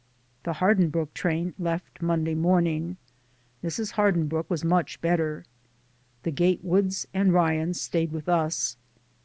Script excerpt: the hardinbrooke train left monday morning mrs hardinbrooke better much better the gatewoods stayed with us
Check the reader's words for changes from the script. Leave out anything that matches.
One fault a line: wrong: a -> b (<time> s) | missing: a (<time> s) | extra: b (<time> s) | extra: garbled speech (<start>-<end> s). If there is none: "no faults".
wrong: better -> was (4.5 s)
extra: and ryans (7.1 s)